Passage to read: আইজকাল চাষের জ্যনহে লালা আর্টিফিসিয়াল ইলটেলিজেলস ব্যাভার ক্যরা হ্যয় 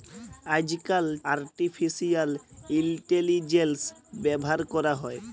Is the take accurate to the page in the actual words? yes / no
no